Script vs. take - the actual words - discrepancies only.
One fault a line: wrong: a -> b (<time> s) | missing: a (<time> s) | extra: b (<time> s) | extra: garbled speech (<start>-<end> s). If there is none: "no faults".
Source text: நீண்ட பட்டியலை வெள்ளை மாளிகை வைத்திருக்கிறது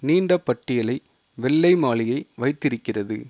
no faults